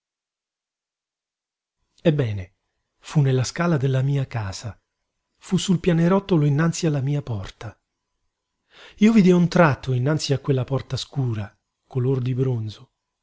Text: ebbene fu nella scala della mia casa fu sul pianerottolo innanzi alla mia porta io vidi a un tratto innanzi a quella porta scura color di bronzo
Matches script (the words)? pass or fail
pass